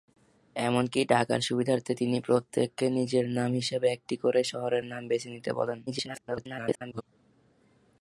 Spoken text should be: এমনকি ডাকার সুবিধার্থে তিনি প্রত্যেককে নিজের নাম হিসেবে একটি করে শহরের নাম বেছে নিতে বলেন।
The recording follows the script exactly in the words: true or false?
false